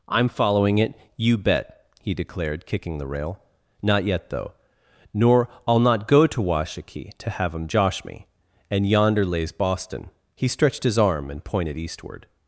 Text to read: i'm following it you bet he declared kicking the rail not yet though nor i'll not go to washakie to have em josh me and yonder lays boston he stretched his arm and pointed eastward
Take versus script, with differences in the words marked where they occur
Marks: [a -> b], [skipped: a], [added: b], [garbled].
i'm following it you bet he declared kicking the rail not yet though nor i'll not go to washakie to have em josh me and yonder lays boston he stretched his arm and pointed eastward